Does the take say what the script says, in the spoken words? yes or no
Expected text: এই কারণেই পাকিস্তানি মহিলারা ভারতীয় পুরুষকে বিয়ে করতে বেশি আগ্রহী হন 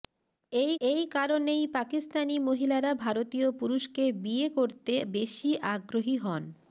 no